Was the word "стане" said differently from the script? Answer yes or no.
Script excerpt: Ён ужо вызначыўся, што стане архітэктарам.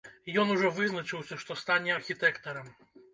no